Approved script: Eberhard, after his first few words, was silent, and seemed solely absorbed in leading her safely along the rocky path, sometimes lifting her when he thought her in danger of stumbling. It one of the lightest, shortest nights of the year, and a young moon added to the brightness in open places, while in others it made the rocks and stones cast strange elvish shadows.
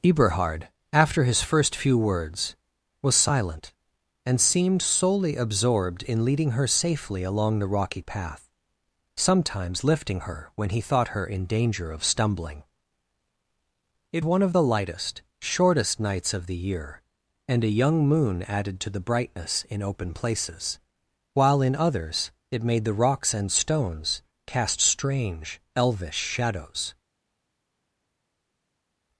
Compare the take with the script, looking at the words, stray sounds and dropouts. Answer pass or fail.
pass